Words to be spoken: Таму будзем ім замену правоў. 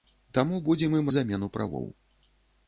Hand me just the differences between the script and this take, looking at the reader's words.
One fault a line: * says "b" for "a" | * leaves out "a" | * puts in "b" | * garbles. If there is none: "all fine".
all fine